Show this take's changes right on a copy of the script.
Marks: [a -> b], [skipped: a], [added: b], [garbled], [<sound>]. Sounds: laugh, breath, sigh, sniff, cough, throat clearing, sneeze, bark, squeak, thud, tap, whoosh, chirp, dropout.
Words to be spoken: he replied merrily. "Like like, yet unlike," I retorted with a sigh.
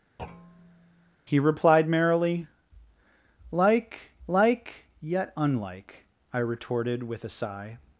[thud] he replied merrily. "Like like, yet unlike," I retorted with a sigh.